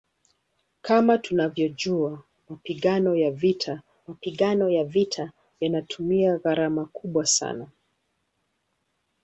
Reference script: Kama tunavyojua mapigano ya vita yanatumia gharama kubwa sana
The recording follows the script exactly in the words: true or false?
false